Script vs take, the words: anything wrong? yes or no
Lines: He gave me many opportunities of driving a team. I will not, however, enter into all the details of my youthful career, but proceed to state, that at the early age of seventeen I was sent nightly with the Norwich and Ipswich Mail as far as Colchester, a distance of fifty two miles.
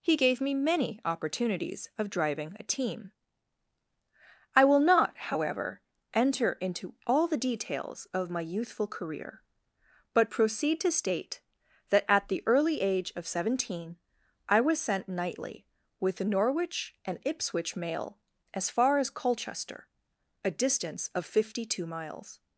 no